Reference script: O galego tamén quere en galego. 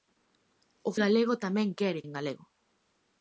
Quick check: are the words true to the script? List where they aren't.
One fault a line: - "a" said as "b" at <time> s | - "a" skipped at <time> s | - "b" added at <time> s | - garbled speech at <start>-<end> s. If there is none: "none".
none